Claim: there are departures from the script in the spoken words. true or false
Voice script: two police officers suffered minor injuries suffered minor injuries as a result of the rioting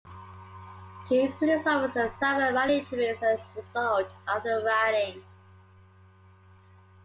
true